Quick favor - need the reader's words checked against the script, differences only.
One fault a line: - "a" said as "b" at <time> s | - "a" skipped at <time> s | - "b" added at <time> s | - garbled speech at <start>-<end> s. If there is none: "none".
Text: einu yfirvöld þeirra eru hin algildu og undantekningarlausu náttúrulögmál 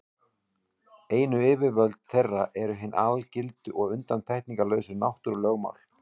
none